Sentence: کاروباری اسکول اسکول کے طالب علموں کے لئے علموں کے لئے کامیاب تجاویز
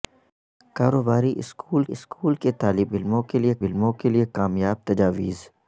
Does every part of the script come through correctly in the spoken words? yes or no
yes